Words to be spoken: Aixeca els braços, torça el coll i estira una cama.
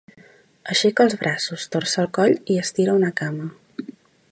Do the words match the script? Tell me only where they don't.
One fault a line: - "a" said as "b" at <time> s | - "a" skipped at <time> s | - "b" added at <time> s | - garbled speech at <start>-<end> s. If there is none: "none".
none